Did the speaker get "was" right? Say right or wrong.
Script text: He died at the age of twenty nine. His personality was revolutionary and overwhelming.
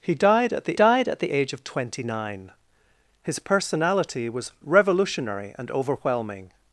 right